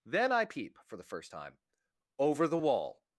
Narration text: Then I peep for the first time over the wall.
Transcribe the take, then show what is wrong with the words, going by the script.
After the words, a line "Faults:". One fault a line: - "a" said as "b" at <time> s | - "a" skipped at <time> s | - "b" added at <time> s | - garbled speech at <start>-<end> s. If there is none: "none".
Then I peep for the first time over the wall.
Faults:
none